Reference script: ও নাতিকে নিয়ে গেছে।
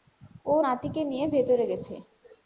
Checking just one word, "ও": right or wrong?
right